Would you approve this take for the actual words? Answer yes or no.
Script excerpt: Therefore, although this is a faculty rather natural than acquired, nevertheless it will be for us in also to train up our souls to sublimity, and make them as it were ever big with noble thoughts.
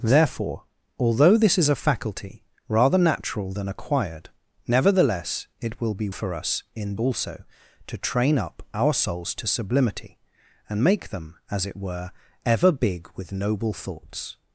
yes